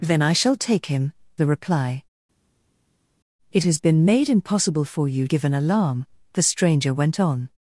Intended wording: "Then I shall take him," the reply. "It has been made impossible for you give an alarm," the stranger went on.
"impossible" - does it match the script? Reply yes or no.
yes